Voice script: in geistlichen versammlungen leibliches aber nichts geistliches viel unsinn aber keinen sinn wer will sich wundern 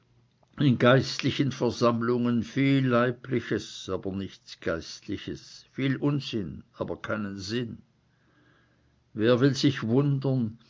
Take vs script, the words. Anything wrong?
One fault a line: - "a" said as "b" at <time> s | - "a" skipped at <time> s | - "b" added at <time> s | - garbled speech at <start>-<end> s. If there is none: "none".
- "viel" added at 2.4 s